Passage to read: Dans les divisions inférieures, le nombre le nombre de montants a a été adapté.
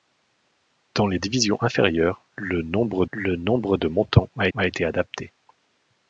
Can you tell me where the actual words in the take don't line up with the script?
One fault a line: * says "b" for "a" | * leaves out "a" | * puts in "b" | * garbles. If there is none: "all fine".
all fine